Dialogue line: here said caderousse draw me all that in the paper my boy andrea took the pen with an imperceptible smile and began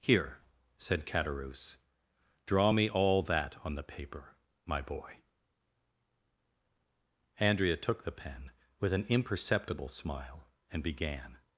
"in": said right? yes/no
no